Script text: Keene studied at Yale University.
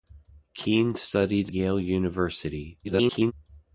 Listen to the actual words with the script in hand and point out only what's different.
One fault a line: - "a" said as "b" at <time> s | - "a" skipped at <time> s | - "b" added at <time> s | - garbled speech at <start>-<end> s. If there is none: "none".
- "at" skipped at 1.5 s
- garbled speech at 2.8-3.3 s